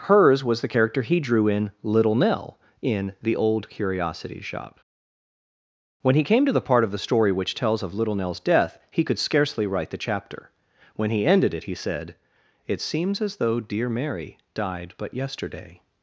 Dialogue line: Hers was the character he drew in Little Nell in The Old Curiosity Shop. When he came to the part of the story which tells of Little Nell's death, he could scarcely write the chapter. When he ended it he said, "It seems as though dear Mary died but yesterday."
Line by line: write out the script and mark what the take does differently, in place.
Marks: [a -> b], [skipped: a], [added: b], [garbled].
Hers was the character he drew in Little Nell in The Old Curiosity Shop. When he came to the part of the story which tells of Little Nell's death, he could scarcely write the chapter. When he ended it he said, "It seems as though dear Mary died but yesterday."